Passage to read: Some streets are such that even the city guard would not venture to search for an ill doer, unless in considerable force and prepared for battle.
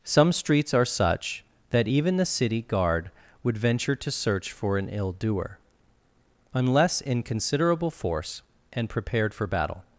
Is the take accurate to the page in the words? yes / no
no